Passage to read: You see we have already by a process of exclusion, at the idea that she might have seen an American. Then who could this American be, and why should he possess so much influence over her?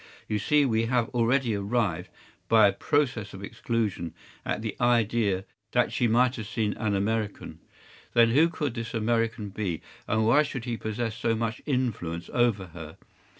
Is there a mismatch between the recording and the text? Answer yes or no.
yes